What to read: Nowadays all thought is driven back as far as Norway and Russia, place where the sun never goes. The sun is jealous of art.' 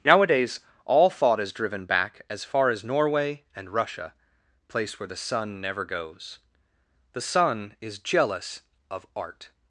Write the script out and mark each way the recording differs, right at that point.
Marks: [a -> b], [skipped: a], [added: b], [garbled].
Nowadays all thought is driven back as far as Norway and Russia, place where the sun never goes. The sun is jealous of art.'